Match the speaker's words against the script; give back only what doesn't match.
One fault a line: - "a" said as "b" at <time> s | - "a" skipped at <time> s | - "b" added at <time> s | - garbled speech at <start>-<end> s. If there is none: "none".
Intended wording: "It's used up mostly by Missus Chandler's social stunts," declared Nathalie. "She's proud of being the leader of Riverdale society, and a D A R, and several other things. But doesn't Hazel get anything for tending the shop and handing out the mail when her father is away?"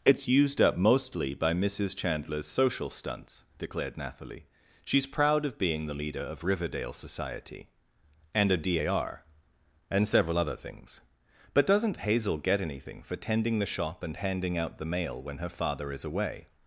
none